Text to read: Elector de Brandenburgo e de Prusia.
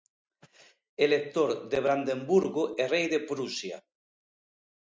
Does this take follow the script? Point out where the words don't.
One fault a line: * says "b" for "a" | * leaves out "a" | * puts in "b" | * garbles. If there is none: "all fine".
* puts in "rei"